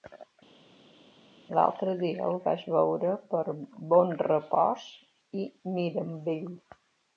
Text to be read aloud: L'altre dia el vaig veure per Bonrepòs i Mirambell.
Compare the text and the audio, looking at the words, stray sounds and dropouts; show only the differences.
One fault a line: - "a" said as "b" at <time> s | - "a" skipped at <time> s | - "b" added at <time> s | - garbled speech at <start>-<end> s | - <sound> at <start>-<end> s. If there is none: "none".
none